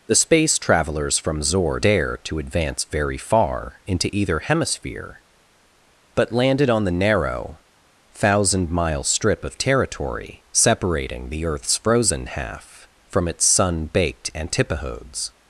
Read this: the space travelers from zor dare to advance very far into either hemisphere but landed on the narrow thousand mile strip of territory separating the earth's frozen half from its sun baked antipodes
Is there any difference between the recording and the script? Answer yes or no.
no